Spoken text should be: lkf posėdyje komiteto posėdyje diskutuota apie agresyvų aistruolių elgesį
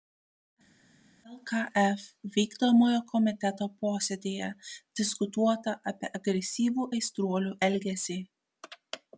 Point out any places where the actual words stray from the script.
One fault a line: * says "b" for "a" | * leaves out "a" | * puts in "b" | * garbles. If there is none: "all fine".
* says "vykdomojo" for "posėdyje"